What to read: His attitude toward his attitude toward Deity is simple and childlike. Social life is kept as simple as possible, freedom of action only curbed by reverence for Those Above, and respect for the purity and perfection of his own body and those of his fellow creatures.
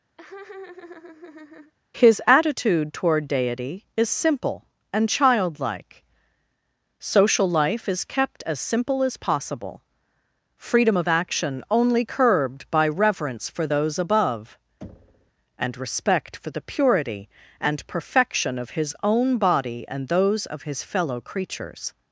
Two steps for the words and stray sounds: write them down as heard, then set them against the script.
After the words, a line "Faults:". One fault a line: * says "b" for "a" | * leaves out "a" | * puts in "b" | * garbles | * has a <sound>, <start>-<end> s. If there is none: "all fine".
His attitude toward Deity is simple and childlike. Social life is kept as simple as possible, freedom of action only curbed by reverence for Those Above, and respect for the purity and perfection of his own body and those of his fellow creatures.
Faults:
* has a laugh, 0.2-1.7 s
* leaves out "his attitude toward"
* has a thud, 14.8-15.3 s